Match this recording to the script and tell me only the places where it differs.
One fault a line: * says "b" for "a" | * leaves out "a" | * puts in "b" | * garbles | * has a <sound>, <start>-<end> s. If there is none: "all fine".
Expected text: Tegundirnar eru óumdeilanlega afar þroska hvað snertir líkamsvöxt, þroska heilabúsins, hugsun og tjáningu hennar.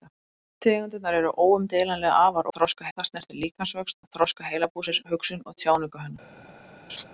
* has a laugh, 6.9-7.0 s